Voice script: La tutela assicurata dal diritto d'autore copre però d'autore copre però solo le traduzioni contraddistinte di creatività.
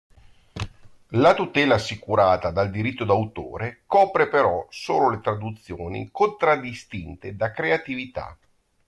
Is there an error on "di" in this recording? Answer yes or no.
yes